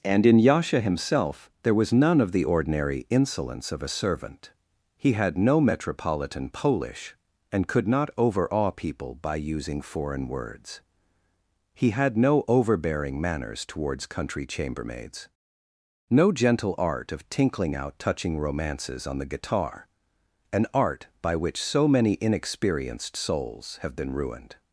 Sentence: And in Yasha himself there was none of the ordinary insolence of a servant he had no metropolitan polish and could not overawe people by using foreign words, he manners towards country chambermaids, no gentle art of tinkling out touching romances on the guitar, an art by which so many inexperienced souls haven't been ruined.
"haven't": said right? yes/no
no